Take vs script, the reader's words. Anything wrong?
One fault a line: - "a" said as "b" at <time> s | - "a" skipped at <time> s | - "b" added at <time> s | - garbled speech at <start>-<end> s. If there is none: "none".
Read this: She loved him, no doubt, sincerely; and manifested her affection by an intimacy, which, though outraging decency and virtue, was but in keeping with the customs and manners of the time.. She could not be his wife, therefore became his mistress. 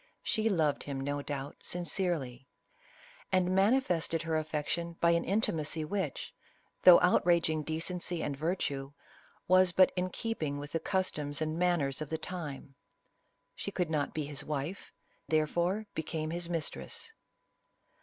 none